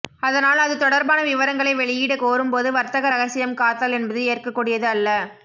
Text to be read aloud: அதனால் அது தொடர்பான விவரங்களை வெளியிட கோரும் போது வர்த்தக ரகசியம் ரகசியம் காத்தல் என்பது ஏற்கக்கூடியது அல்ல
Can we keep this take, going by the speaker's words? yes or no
no